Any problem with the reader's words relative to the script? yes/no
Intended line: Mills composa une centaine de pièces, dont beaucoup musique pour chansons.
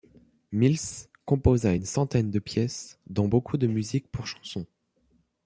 yes